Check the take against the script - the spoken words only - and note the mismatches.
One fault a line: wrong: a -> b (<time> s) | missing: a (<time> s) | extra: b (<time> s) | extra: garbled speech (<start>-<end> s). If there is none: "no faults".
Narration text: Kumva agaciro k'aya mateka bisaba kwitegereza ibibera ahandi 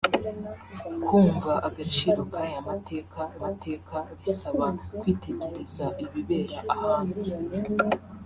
extra: mateka (3.4 s)